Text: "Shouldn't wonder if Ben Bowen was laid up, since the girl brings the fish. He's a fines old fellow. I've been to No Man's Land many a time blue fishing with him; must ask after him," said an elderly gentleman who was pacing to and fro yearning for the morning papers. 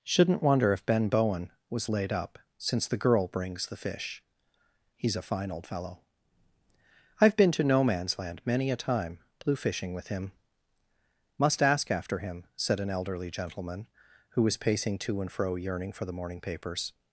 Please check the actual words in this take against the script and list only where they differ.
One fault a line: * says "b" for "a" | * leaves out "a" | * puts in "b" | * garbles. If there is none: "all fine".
* says "fine" for "fines"